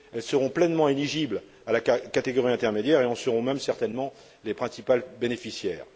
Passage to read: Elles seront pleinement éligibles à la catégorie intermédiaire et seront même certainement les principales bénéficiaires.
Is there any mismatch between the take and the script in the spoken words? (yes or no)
yes